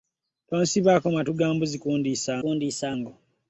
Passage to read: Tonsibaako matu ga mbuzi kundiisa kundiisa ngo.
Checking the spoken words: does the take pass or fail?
pass